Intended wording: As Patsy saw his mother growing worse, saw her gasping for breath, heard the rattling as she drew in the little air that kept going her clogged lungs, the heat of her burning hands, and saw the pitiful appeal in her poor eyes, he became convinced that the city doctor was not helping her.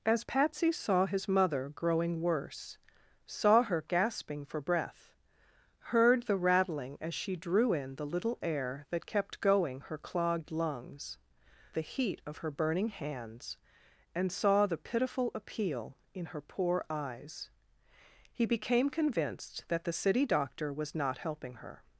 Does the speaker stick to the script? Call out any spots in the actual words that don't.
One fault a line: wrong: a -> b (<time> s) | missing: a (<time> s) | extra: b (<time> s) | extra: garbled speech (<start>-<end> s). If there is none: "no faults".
no faults